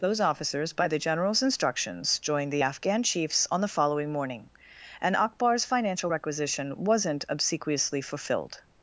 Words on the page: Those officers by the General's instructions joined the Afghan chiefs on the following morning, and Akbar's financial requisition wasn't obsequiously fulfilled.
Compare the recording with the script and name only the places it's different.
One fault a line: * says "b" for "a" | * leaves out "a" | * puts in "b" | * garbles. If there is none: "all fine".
all fine